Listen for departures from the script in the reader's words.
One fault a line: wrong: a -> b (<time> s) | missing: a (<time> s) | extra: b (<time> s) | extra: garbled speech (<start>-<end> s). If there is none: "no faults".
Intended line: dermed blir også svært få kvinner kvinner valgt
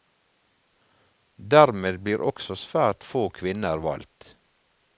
missing: kvinner (3.8 s)